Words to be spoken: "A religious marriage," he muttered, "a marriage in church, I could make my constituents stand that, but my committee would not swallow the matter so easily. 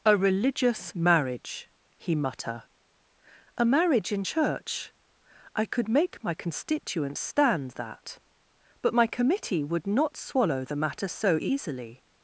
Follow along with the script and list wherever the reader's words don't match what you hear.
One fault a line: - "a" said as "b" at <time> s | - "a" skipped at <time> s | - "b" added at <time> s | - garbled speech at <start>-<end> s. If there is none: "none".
- "muttered" said as "mutter" at 2.1 s